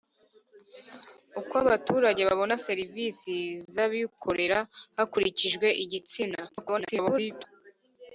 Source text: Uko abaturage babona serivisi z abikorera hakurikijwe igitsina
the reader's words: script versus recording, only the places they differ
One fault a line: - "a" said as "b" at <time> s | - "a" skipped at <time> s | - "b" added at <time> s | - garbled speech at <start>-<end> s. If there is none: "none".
- garbled speech at 6.5-7.5 s